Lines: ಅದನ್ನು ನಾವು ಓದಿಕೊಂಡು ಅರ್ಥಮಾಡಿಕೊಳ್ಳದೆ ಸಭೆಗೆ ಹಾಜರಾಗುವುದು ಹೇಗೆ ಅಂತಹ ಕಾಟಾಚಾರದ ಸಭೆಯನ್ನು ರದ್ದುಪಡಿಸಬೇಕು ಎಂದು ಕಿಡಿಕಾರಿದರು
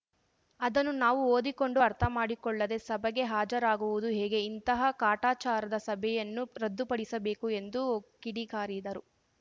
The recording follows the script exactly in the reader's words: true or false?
false